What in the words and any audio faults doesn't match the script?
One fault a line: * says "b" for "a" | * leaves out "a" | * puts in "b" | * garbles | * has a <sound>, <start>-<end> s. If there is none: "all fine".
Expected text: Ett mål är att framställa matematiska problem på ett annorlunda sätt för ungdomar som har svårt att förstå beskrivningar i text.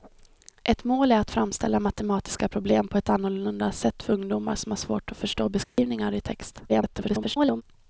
* has a dropout, 5.6-5.8 s
* garbles